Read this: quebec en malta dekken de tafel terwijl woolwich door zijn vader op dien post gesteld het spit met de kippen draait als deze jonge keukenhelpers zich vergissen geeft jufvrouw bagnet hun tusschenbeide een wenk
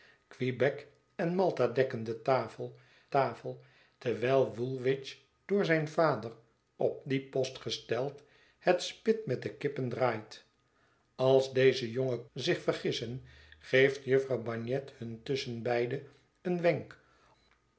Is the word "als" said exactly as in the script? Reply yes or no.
yes